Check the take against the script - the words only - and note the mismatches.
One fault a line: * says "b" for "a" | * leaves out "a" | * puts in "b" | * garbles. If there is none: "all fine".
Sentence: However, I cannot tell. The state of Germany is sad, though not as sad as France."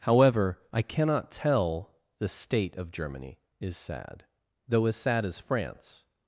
* leaves out "not"